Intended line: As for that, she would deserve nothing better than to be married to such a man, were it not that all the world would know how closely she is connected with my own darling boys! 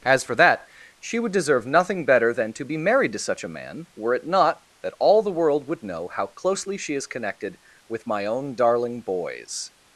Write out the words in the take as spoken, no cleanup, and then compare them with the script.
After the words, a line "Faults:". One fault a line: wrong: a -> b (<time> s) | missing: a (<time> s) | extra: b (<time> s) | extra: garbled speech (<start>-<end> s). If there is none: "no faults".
As for that, she would deserve nothing better than to be married to such a man, were it not that all the world would know how closely she is connected with my own darling boys!
Faults:
no faults